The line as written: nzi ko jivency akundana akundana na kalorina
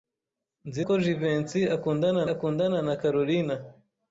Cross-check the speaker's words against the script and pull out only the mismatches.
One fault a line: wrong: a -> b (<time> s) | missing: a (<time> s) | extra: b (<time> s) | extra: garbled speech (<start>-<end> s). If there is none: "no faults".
no faults